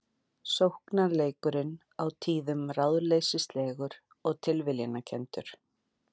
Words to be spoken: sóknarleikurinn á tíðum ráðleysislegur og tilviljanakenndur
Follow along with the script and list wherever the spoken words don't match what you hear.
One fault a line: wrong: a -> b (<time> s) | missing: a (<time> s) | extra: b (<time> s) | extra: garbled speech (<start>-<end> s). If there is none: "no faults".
no faults